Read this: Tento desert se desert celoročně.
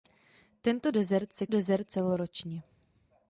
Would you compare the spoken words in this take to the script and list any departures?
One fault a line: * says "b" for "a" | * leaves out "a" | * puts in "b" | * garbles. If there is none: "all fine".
all fine